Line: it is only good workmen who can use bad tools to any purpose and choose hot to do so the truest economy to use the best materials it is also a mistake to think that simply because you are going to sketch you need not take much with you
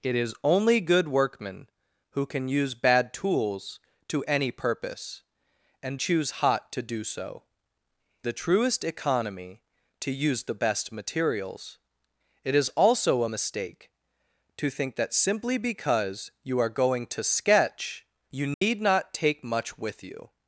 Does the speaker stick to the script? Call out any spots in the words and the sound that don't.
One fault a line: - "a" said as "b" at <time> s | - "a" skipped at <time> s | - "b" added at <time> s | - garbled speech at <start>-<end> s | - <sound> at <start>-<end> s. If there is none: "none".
- dropout at 18.5-18.6 s